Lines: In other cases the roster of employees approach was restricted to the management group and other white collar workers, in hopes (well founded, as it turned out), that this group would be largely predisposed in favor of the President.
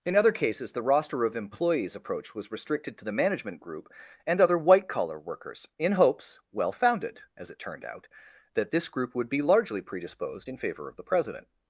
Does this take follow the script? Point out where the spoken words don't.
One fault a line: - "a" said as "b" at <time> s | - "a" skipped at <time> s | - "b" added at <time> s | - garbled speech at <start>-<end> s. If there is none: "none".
none